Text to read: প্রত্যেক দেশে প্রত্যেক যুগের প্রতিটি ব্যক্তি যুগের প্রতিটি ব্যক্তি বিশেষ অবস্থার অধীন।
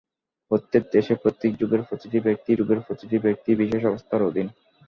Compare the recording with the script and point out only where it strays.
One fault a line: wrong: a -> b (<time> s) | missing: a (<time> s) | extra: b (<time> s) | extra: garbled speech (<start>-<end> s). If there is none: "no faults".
no faults